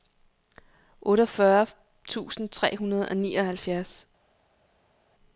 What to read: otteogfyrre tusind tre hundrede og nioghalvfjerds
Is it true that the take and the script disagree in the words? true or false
false